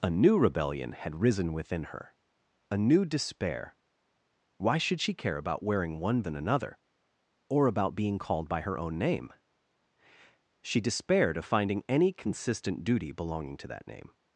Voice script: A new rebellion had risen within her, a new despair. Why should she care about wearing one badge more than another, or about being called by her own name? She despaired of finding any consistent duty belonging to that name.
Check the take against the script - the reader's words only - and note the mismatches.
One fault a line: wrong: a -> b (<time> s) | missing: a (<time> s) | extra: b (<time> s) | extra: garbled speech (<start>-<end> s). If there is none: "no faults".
missing: badge more (6.2 s)